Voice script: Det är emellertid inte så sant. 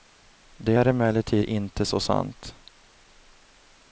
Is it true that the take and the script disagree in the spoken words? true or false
false